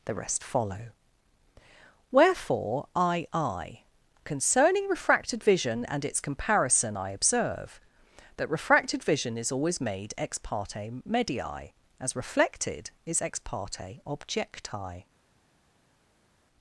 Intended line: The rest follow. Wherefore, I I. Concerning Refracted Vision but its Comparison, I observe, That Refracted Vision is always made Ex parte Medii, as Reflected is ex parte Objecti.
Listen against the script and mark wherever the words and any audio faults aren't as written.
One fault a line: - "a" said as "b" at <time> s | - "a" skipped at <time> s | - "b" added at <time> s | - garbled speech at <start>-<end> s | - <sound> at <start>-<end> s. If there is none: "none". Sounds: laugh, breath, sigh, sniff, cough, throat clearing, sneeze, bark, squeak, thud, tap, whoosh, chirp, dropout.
- "but" said as "and" at 5.8 s